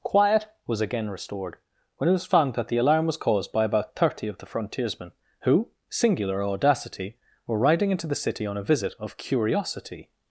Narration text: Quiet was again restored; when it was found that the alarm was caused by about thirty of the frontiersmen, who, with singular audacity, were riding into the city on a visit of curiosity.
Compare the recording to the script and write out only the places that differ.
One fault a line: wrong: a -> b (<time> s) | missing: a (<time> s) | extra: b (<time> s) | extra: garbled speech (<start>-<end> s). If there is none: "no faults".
missing: with (5.7 s)